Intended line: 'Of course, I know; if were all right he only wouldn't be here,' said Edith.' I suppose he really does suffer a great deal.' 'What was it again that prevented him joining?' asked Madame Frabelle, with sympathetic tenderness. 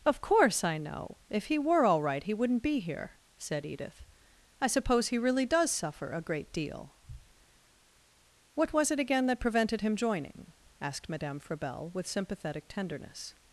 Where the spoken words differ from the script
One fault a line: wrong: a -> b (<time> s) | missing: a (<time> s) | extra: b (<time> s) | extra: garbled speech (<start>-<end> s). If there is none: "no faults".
extra: he (1.4 s)
missing: only (2.3 s)